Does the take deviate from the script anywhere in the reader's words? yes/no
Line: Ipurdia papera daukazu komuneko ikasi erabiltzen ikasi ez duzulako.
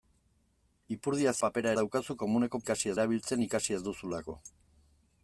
no